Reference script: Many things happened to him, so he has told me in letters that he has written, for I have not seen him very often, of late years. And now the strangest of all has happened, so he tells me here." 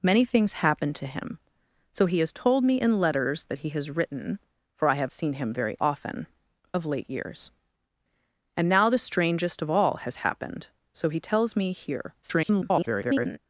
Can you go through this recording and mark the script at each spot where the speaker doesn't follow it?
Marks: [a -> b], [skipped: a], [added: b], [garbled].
Many things happened to him, so he has told me in letters that he has written, for I have [skipped: not] seen him very often, of late years. And now the strangest of all has happened, so he tells me here." [garbled]